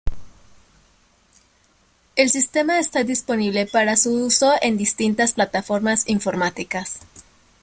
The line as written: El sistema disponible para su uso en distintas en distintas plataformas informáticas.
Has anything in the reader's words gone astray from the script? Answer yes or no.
yes